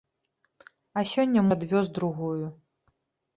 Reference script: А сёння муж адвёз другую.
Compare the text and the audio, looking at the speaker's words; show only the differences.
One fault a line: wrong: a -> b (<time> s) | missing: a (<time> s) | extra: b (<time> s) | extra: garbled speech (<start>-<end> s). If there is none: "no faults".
missing: муж (1.4 s)